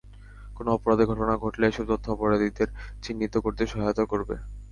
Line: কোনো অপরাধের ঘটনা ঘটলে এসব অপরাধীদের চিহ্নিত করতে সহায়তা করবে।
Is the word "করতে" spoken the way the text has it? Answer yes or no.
yes